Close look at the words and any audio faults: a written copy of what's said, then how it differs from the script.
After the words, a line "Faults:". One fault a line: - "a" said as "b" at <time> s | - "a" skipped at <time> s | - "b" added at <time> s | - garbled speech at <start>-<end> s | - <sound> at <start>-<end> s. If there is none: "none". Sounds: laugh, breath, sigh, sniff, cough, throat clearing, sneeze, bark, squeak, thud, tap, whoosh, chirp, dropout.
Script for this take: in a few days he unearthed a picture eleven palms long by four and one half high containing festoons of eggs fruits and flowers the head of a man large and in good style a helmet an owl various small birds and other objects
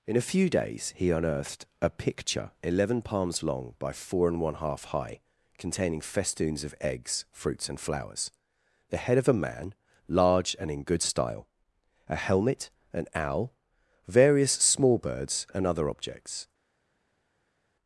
in a few days he unearthed a picture eleven palms long by four and one half high containing festoons of eggs fruits and flowers the head of a man large and in good style a helmet an owl various small birds and other objects
Faults:
none